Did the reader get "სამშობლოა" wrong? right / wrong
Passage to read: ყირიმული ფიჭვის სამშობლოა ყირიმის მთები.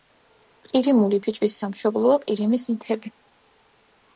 right